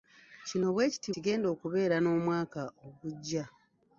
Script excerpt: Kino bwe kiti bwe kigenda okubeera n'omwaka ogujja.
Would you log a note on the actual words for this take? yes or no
yes